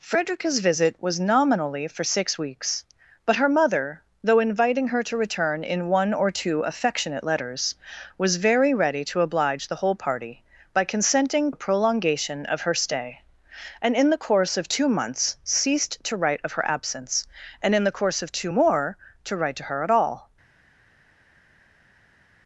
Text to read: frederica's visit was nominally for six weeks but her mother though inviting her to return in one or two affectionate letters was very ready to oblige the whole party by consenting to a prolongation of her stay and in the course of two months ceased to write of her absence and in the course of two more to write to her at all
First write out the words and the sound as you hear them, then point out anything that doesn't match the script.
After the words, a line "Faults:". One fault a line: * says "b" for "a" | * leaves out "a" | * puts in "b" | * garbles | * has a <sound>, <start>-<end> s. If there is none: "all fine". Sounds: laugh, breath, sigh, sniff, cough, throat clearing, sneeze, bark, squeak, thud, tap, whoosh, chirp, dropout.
frederica's visit was nominally for six weeks but her mother though inviting her to return in one or two affectionate letters was very ready to oblige the whole party by consenting a prolongation of her stay and in the course of two months ceased to write of her absence and in the course of two more to write to her at all
Faults:
* leaves out "to"